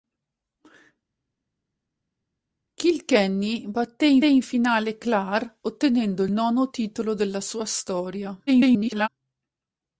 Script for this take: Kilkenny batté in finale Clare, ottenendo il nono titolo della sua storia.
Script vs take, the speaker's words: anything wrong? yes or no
yes